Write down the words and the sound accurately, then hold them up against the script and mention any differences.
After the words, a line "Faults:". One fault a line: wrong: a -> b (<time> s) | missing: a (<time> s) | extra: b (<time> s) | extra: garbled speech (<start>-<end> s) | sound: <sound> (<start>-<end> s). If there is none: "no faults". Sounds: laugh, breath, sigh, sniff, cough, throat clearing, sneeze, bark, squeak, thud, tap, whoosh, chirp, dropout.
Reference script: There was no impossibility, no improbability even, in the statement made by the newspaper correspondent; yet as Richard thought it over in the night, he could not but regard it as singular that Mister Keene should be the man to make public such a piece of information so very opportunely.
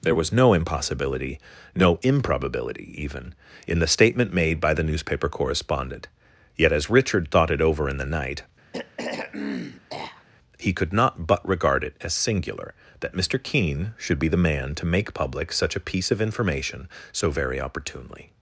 There was no impossibility, no improbability even, in the statement made by the newspaper correspondent; yet as Richard thought it over in the night, he could not but regard it as singular that Mister Keene should be the man to make public such a piece of information so very opportunely.
Faults:
sound: throat clearing (8.7-10.2 s)